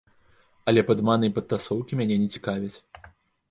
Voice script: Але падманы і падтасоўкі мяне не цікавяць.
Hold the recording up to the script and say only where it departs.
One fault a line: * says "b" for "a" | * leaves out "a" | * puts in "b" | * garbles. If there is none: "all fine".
all fine